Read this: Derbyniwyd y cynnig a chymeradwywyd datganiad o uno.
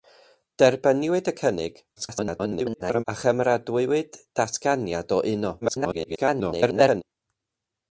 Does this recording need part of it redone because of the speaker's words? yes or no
yes